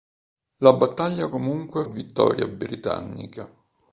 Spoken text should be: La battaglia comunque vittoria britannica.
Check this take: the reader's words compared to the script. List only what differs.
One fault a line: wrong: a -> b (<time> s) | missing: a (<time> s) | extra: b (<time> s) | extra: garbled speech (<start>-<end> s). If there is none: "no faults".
no faults